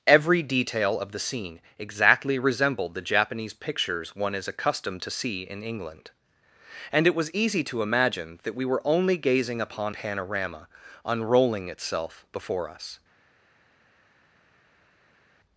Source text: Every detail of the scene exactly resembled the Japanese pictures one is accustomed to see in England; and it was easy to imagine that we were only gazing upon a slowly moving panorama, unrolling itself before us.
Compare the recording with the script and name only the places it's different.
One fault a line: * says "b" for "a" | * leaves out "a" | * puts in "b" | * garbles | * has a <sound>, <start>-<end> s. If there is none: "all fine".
* leaves out "a slowly moving"